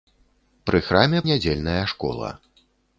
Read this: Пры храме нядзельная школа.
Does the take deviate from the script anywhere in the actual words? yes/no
no